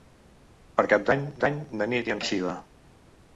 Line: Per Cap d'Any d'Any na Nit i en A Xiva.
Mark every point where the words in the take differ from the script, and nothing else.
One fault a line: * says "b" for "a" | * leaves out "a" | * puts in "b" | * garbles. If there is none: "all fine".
all fine